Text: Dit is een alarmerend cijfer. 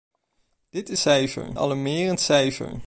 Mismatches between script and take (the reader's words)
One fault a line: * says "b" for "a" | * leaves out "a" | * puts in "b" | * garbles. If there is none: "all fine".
* says "cijfer" for "een"